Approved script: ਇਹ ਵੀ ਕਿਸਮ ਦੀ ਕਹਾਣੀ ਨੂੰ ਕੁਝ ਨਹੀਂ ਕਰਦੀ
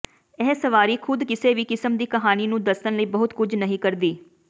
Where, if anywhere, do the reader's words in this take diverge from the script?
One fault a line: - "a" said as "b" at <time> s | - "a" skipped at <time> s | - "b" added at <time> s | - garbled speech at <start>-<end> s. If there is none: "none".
- "ਸਵਾਰੀ ਖੁਦ ਕਿਸੇ" added at 0.6 s
- "ਦੱਸਣ ਲਈ ਬਹੁਤ" added at 2.6 s